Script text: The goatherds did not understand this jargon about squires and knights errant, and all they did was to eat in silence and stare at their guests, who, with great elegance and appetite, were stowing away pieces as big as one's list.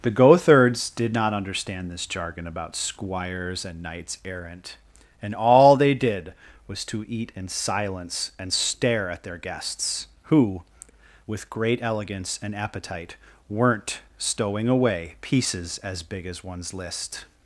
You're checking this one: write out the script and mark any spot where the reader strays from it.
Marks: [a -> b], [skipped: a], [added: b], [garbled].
The goatherds did not understand this jargon about squires and knights errant, and all they did was to eat in silence and stare at their guests, who, with great elegance and appetite, [were -> weren't] stowing away pieces as big as one's list.